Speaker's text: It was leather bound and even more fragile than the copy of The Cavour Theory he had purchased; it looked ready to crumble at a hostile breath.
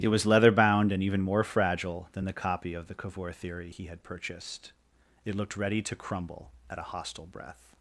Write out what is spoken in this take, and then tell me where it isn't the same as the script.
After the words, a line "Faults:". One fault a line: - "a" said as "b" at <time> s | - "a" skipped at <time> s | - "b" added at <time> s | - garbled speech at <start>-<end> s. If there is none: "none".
It was leather bound and even more fragile than the copy of The Cavour Theory he had purchased; it looked ready to crumble at a hostile breath.
Faults:
none